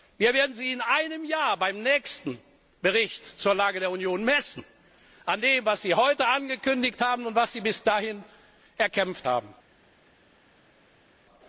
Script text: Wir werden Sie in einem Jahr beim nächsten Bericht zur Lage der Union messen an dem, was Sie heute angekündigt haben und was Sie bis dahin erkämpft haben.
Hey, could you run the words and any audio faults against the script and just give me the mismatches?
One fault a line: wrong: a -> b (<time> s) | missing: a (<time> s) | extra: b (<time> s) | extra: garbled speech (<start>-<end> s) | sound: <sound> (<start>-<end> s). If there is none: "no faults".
no faults